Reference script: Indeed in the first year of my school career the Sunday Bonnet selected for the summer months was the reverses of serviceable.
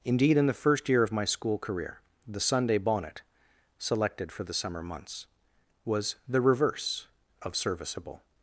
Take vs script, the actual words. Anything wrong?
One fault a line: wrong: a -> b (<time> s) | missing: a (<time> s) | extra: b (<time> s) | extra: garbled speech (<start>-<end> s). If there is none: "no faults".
wrong: reverses -> reverse (6.4 s)